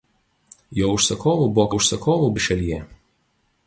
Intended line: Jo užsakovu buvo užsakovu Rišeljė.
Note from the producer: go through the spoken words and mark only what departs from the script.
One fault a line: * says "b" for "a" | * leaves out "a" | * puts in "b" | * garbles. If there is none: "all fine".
all fine